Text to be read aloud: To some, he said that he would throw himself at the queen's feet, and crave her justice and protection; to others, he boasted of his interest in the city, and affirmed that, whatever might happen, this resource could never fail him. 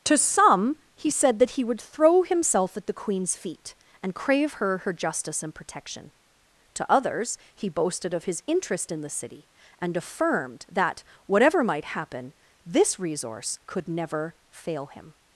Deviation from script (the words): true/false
true